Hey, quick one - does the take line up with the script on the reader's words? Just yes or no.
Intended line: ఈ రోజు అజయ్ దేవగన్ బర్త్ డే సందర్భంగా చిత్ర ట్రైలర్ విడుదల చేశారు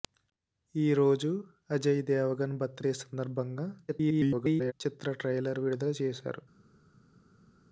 no